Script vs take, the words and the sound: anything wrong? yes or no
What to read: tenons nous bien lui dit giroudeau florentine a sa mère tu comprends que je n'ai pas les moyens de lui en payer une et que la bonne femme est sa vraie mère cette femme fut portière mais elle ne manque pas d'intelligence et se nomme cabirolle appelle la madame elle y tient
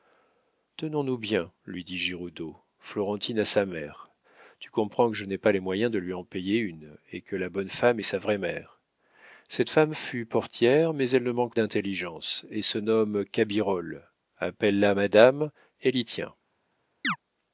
yes